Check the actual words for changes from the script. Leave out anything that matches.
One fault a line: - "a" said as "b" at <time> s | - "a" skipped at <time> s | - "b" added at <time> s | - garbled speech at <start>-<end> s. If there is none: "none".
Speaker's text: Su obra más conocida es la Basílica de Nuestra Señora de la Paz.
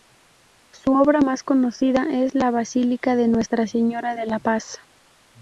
none